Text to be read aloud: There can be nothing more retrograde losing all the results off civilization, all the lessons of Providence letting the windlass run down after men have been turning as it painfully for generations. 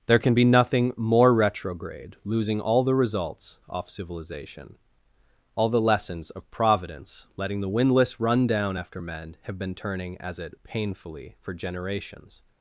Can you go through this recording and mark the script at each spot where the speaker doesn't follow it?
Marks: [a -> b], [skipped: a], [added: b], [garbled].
There can be nothing more retrograde losing all the results off civilization, all the lessons of Providence letting the windlass run down after men have been turning as it painfully for generations.